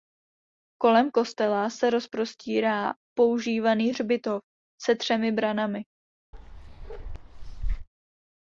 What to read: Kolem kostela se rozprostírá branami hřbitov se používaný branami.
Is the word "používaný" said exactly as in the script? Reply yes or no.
no